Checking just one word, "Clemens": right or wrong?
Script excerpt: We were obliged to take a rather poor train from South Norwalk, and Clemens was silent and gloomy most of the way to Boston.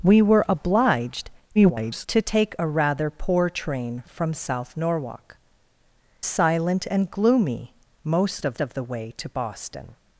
wrong